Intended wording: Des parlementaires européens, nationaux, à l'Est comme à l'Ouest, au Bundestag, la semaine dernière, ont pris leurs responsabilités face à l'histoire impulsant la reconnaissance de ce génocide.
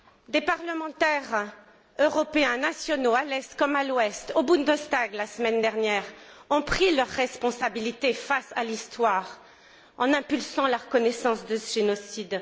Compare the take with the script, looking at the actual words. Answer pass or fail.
fail